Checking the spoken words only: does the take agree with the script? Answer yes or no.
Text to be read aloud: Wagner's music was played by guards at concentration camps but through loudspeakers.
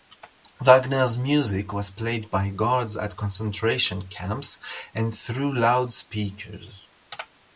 no